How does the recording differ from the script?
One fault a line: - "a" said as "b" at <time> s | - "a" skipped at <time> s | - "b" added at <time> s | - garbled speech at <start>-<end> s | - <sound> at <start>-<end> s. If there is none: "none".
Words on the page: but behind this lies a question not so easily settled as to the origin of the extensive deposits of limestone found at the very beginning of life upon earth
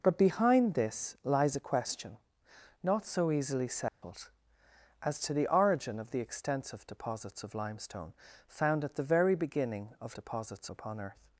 - dropout at 3.9-4.0 s
- "life" said as "deposits" at 10.1 s